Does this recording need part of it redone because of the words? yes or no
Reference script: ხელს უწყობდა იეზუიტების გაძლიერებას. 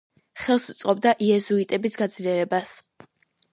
no